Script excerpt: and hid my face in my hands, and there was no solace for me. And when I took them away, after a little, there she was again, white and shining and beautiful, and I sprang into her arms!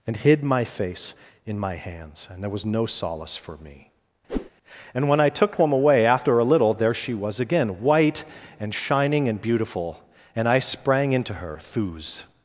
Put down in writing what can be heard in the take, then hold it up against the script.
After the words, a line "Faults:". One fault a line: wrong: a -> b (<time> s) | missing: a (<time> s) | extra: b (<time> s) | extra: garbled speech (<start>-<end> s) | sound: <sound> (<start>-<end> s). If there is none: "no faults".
and hid my face in my hands, and there was no solace for me. And when I took them away, after a little, there she was again, white and shining and beautiful, and I sprang into her thuz!
Faults:
sound: whoosh (4.3-4.5 s)
wrong: arms -> thuz (11.6 s)